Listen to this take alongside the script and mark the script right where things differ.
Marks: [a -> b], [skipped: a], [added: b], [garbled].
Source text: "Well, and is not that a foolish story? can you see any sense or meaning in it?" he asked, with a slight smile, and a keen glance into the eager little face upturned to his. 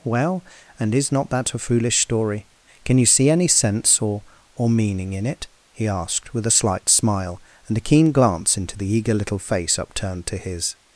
"Well, and is not that a foolish story? can you see any sense or [added: or] meaning in it?" he asked, with a slight smile, and a keen glance into the eager little face upturned to his.